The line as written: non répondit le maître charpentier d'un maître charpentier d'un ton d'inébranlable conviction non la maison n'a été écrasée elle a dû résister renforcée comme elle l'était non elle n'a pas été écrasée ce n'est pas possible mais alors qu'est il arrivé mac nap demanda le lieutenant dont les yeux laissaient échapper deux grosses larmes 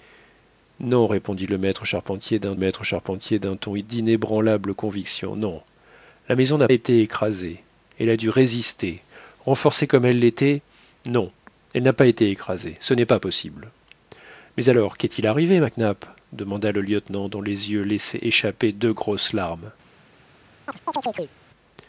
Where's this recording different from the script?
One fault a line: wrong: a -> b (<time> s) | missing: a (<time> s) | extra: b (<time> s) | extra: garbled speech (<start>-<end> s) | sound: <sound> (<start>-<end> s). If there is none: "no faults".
sound: chirp (20.7-21.4 s)